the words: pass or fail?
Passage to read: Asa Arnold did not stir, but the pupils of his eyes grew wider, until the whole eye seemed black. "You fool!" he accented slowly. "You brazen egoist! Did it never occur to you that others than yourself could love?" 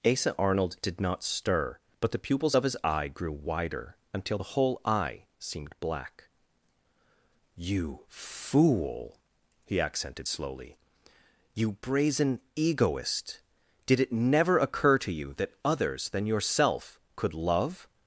fail